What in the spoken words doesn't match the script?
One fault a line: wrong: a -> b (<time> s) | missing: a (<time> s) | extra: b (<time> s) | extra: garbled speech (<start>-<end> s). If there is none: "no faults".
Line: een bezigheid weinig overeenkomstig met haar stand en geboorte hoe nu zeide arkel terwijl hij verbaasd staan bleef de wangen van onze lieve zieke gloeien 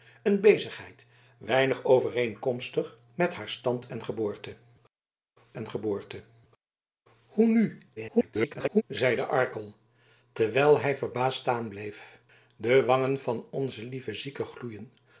extra: en geboorte (5.5 s)
extra: garbled speech (8.0-8.8 s)